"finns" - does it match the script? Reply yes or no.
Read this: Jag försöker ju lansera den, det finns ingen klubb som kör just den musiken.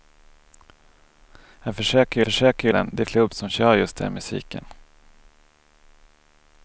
no